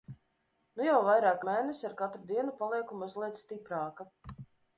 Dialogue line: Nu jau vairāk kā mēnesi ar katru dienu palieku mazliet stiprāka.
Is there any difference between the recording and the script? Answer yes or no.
yes